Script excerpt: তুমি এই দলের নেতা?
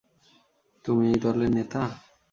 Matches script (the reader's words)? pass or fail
pass